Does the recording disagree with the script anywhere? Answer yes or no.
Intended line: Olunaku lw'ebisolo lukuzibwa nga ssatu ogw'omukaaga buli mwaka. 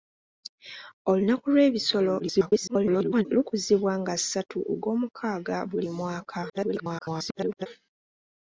yes